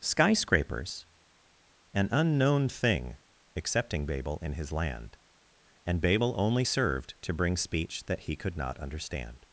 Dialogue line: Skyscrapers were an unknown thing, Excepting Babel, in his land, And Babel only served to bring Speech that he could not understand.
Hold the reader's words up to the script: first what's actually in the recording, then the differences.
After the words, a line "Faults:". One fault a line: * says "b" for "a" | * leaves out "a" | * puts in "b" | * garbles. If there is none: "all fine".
Skyscrapers an unknown thing, Excepting Babel, in his land, And Babel only served to bring Speech that he could not understand.
Faults:
* leaves out "were"